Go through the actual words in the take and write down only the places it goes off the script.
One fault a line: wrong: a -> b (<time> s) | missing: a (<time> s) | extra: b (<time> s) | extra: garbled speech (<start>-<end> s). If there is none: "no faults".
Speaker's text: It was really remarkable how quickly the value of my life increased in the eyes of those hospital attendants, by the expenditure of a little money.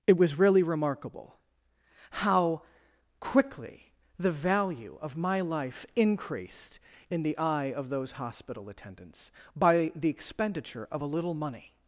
wrong: eyes -> eye (7.4 s)